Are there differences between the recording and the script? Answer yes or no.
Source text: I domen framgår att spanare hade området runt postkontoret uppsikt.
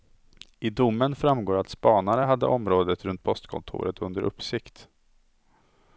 yes